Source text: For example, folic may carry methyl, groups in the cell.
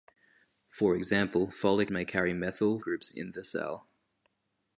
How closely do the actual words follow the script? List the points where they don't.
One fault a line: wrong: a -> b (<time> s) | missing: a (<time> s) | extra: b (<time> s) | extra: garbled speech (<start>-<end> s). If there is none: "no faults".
no faults